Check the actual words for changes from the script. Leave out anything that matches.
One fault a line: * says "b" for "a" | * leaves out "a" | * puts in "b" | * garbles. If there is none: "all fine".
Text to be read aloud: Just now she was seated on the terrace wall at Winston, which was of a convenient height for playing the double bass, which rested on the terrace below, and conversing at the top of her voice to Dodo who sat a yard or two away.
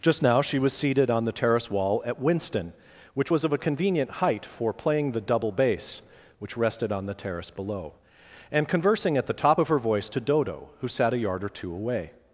all fine